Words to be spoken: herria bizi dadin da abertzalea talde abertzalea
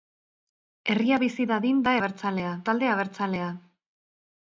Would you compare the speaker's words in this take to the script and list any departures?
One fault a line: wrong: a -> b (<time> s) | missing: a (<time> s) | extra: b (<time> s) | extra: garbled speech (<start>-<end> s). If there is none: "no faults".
no faults